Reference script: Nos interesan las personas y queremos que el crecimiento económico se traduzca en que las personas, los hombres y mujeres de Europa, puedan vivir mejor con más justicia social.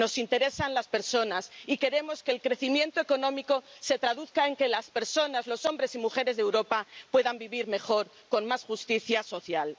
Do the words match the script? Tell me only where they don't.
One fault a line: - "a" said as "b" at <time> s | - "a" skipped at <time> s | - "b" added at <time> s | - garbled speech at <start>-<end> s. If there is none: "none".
none